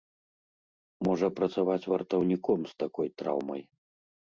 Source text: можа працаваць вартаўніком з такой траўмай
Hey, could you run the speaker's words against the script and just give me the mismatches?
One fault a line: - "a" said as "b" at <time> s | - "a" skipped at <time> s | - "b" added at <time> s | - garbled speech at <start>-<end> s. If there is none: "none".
none